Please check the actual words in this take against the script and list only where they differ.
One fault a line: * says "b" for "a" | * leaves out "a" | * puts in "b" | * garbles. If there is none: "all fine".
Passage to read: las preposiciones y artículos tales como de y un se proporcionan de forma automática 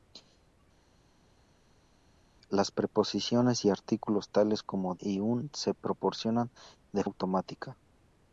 * leaves out "de"
* leaves out "forma"